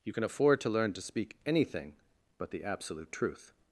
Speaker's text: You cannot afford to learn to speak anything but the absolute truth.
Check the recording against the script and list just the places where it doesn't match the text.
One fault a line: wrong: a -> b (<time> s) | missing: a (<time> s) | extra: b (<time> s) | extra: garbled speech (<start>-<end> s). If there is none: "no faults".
wrong: cannot -> can (0.1 s)